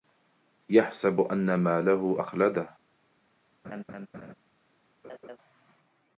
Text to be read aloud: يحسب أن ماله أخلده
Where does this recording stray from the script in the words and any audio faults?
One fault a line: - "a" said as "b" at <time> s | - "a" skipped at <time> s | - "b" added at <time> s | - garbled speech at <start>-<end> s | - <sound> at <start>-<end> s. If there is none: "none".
- laugh at 3.6-4.3 s
- laugh at 5.0-5.4 s